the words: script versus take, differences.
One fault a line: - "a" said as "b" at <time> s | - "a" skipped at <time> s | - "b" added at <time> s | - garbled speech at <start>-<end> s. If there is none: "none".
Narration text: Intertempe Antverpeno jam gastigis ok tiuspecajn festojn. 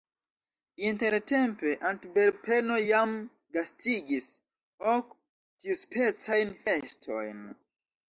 none